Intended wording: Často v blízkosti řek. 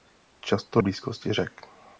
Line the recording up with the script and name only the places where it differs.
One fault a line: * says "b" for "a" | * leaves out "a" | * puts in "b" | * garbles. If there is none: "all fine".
all fine